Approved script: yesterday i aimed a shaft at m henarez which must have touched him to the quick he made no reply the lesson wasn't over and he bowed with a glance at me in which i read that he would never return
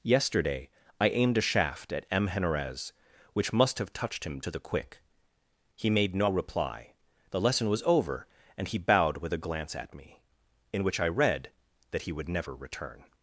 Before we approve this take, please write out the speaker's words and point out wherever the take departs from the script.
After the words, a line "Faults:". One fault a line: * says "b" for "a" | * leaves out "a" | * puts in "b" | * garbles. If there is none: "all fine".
yesterday i aimed a shaft at m henarez which must have touched him to the quick he made no reply the lesson was over and he bowed with a glance at me in which i read that he would never return
Faults:
* says "was" for "wasn't"